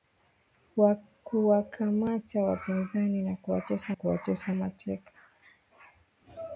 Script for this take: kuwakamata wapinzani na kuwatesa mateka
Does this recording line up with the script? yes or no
no